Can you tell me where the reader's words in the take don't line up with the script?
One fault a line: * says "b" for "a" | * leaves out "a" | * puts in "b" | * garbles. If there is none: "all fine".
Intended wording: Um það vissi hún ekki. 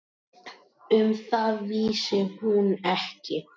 all fine